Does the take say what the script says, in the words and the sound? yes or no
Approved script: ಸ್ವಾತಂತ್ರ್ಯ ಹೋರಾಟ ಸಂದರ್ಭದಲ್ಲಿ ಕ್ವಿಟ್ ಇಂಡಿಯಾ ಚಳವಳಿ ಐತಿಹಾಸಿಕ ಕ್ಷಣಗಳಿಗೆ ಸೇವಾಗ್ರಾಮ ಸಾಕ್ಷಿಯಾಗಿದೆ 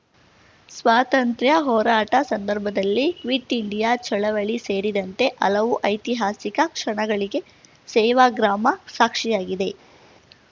no